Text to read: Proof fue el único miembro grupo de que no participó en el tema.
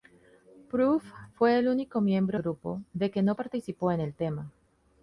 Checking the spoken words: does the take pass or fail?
pass